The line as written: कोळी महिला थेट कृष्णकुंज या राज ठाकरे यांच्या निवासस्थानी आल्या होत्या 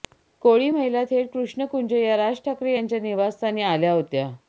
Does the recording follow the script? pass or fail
pass